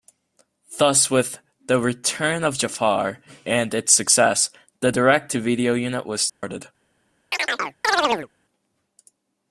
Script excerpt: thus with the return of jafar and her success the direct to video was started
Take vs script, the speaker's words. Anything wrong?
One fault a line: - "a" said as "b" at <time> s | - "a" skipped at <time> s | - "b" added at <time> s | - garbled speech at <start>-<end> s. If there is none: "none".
- "her" said as "its" at 3.7 s
- "unit" added at 5.7 s